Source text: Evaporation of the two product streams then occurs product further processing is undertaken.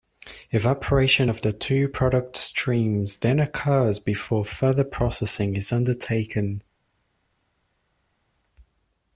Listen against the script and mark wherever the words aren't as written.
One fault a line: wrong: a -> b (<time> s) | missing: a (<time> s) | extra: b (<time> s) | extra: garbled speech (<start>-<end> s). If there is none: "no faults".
wrong: product -> before (4.0 s)